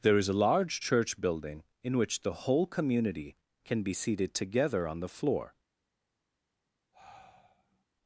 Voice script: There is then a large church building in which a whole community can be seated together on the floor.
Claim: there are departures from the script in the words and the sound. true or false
true